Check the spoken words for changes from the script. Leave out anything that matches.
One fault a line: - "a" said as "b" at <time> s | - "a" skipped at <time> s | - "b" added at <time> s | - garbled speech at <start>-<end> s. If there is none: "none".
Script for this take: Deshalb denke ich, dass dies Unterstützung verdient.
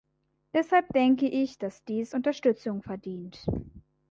none